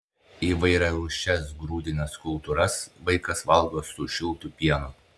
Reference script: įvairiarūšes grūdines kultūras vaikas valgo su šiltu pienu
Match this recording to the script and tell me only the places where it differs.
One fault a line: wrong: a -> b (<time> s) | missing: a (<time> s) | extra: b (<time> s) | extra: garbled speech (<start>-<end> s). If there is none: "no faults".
no faults